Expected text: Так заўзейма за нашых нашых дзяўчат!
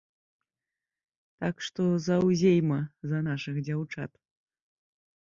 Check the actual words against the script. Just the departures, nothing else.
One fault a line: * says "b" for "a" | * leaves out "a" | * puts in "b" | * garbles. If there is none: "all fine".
* puts in "што"
* leaves out "нашых"